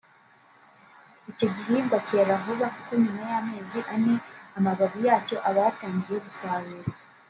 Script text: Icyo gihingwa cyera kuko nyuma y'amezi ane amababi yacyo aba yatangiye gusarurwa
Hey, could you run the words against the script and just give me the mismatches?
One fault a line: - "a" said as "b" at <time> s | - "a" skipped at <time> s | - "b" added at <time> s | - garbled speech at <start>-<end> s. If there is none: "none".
- "vuba" added at 2.4 s